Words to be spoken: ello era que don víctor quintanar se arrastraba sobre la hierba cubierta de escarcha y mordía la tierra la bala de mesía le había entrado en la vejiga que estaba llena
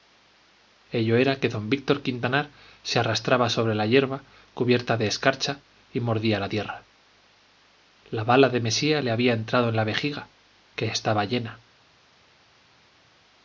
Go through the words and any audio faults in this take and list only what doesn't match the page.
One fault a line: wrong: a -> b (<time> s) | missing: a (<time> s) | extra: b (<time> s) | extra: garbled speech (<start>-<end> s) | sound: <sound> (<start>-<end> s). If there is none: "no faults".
no faults